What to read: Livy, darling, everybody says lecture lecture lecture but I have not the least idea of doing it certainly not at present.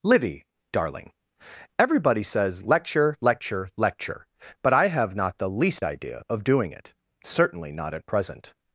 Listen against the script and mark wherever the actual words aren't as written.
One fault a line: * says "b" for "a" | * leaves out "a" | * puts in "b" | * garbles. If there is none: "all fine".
all fine